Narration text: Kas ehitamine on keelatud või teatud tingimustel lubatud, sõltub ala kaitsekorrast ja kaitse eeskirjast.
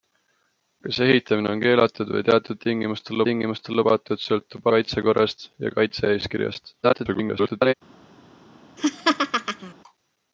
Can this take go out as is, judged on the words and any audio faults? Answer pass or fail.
fail